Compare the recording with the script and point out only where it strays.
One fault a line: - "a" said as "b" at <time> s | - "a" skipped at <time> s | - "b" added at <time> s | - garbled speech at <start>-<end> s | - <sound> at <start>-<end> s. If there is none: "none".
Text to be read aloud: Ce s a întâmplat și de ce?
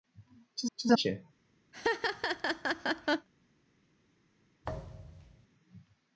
- "ce" added at 0.7 s
- "întâmplat și de" skipped at 0.9 s
- laugh at 1.7-3.3 s
- thud at 4.6-5.5 s